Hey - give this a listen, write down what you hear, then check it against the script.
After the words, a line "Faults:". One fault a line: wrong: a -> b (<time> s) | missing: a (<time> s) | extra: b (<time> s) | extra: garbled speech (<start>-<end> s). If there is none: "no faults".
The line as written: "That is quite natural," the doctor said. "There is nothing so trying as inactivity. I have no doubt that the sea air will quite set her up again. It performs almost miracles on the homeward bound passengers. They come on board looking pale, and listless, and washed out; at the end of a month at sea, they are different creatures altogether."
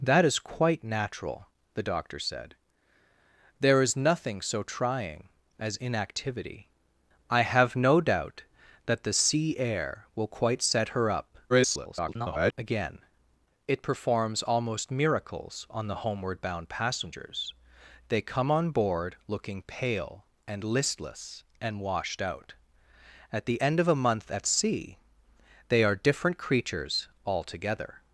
"That is quite natural," the doctor said. "There is nothing so trying as inactivity. I have no doubt that the sea air will quite set her up [garbled] again. It performs almost miracles on the homeward bound passengers. They come on board looking pale, and listless, and washed out; at the end of a month at sea, they are different creatures altogether."
Faults:
extra: garbled speech (11.5-12.5 s)